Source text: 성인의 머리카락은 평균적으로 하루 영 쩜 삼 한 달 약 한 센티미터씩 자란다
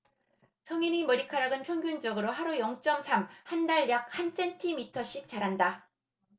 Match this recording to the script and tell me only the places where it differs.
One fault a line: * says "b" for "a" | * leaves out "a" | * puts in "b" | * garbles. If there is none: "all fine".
all fine